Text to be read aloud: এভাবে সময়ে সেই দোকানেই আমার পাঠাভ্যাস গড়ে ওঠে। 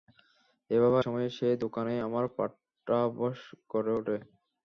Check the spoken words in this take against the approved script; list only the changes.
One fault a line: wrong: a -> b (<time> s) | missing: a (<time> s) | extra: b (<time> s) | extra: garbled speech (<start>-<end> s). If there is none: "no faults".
no faults